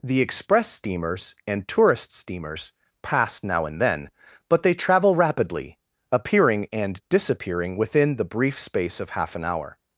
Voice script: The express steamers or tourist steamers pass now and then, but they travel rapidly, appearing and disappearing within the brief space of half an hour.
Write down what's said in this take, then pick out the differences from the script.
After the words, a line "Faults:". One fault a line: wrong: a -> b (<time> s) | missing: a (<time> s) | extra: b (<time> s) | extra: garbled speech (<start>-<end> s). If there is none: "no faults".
The express steamers and tourist steamers pass now and then, but they travel rapidly, appearing and disappearing within the brief space of half an hour.
Faults:
wrong: or -> and (1.4 s)